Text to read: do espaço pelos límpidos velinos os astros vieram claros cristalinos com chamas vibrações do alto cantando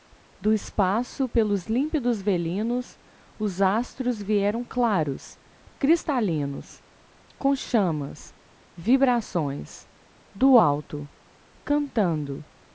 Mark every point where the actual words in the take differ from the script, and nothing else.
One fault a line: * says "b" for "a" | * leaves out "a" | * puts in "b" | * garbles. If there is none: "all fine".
all fine